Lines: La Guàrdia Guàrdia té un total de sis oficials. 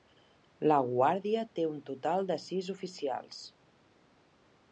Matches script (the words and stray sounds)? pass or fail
fail